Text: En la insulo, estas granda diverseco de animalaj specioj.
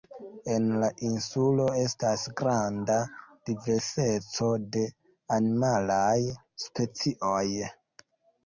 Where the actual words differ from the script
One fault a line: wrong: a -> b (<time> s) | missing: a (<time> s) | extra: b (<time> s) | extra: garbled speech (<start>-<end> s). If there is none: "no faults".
no faults